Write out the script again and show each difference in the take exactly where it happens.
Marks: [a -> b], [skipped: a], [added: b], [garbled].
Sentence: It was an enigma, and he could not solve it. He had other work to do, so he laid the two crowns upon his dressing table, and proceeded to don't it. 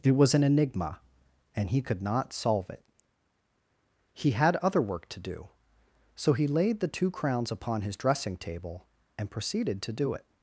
It was an enigma, and he could not solve it. He had other work to do, so he laid the two crowns upon his dressing table, and proceeded to [don't -> do] it.